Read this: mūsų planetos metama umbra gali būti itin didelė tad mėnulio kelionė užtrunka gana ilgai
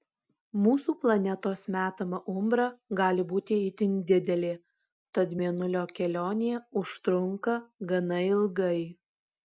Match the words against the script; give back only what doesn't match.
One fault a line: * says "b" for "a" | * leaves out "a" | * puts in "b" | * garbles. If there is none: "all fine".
all fine